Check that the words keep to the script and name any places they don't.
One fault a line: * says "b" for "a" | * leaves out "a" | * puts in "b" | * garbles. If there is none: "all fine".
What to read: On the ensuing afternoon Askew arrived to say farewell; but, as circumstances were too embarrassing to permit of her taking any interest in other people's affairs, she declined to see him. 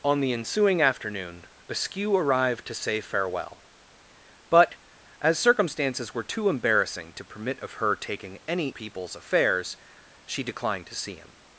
* leaves out "interest in other"